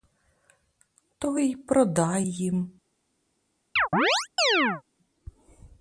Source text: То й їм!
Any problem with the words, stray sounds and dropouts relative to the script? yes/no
yes